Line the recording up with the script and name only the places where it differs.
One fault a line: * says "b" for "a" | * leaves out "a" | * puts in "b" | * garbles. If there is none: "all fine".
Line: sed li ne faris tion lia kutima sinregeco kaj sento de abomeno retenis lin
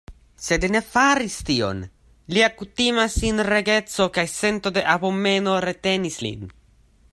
all fine